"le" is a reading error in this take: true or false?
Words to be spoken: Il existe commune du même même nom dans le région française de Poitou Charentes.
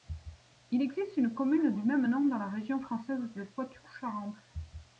true